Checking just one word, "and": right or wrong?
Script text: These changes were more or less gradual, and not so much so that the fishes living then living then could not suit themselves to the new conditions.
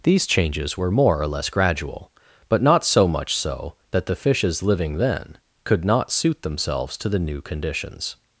wrong